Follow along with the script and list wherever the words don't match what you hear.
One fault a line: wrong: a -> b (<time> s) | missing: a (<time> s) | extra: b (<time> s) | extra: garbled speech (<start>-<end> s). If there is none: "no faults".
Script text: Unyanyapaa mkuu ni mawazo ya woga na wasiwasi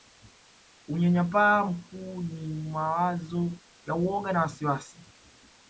no faults